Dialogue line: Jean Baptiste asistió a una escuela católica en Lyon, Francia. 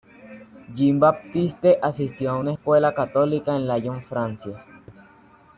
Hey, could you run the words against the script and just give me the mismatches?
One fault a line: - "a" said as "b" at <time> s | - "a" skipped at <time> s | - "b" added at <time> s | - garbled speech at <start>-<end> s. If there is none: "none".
none